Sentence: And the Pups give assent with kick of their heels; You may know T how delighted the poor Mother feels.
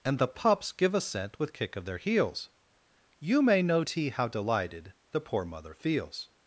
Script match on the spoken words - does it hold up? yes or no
yes